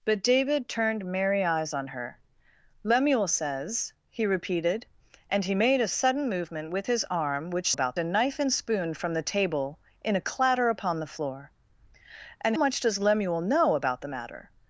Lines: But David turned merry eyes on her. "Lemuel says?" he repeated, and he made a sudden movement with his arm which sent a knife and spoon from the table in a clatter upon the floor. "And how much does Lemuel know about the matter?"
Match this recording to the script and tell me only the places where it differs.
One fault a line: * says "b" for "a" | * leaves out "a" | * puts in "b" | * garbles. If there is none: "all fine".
* says "about" for "sent"
* leaves out "how"